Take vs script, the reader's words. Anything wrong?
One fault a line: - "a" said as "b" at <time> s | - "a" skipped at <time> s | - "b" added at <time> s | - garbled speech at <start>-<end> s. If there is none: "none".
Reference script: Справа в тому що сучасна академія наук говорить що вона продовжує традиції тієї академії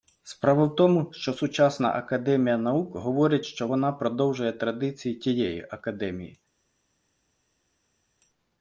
none